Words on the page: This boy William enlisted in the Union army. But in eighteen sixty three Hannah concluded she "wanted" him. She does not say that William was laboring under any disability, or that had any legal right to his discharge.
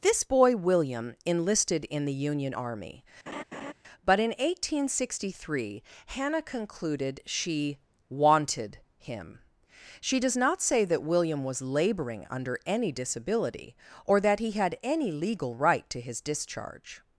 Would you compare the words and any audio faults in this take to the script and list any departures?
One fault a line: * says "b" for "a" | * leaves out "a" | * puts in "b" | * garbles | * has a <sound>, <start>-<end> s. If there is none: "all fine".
* has a laugh, 3.3-3.7 s
* puts in "he"